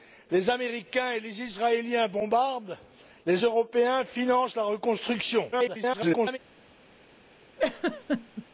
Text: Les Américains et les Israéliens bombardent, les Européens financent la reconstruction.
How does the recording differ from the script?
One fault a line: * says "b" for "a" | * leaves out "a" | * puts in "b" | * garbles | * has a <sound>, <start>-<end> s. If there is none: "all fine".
* garbles
* has a laugh, 7.6-8.5 s